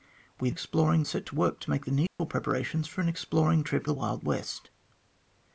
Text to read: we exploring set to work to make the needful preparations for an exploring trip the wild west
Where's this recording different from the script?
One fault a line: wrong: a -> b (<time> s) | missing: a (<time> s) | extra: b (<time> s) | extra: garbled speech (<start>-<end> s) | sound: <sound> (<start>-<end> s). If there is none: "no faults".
sound: dropout (2.1-2.2 s)